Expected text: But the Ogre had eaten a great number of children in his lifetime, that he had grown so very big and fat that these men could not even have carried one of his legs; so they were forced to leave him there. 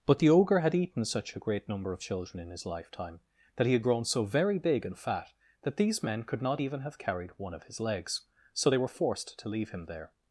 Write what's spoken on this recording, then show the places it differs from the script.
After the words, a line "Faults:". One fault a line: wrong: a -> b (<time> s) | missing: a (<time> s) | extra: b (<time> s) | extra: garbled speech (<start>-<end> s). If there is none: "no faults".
But the Ogre had eaten such a great number of children in his lifetime, that he had grown so very big and fat that these men could not even have carried one of his legs; so they were forced to leave him there.
Faults:
extra: such (1.1 s)